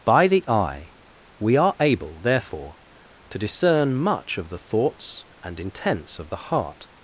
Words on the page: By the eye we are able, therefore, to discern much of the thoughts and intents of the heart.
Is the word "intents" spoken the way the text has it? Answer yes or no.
yes